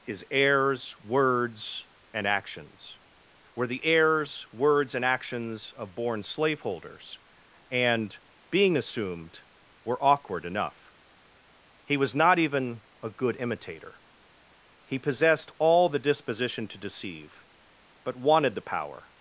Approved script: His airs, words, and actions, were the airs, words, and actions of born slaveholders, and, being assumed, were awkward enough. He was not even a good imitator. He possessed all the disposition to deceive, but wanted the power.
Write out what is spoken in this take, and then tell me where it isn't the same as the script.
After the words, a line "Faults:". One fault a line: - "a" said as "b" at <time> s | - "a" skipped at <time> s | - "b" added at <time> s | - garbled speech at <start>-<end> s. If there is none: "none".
His airs, words, and actions, were the airs, words, and actions of born slaveholders, and, being assumed, were awkward enough. He was not even a good imitator. He possessed all the disposition to deceive, but wanted the power.
Faults:
none